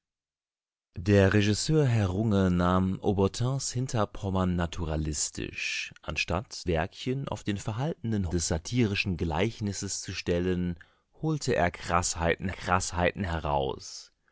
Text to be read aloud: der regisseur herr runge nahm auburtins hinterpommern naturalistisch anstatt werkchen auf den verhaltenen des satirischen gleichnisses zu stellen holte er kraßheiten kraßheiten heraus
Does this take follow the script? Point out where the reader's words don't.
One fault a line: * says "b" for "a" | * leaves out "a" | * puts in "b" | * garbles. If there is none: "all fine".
all fine